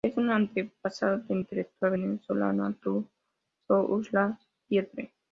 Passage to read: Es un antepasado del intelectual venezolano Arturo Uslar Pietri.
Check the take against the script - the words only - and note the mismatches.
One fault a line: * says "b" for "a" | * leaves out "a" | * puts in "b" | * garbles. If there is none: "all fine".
all fine